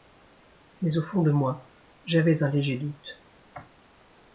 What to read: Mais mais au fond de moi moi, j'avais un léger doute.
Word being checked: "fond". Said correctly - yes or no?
yes